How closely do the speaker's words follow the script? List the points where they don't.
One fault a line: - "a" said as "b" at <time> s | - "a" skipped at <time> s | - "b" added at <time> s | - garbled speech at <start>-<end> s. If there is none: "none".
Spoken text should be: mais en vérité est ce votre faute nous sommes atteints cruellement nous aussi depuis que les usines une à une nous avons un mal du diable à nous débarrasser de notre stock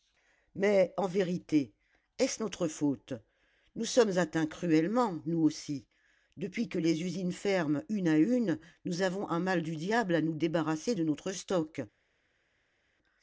- "votre" said as "notre" at 2.4 s
- "ferment" added at 7.3 s